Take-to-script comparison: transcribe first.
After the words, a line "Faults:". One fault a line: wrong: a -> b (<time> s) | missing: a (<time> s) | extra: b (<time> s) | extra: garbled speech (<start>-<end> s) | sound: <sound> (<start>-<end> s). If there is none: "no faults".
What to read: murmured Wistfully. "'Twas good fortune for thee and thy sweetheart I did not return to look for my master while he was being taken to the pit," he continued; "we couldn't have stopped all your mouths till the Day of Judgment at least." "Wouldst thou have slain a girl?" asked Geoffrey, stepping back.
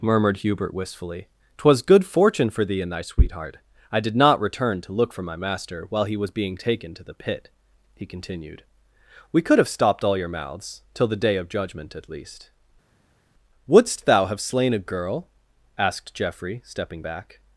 murmured Hubert wistfully. "'Twas good fortune for thee and thy sweetheart I did not return to look for my master while he was being taken to the pit," he continued; "we could have stopped all your mouths till the Day of Judgment at least." "Wouldst thou have slain a girl?" asked Geoffrey, stepping back.
Faults:
extra: Hubert (0.4 s)
wrong: couldn't -> could (9.4 s)